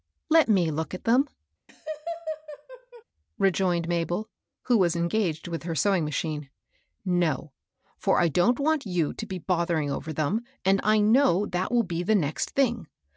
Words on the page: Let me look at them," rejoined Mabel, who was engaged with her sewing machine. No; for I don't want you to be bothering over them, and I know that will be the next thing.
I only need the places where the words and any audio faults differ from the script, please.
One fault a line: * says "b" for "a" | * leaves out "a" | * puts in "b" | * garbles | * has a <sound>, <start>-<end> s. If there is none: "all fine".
* has a laugh, 1.7-3.0 s